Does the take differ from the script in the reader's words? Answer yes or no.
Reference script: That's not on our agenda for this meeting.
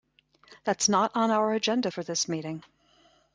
no